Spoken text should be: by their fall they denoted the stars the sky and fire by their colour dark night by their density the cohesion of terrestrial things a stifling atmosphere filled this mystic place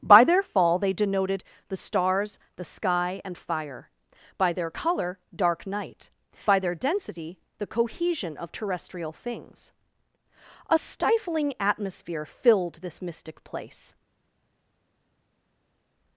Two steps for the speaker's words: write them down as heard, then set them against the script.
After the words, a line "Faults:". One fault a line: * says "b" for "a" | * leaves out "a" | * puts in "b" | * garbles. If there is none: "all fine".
by their fall they denoted the stars the sky and fire by their colour dark night by their density the cohesion of terrestrial things a stifling atmosphere filled this mystic place
Faults:
all fine